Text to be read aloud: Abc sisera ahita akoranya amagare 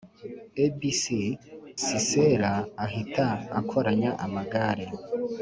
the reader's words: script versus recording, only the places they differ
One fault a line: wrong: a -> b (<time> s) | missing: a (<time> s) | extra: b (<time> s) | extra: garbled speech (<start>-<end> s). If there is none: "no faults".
no faults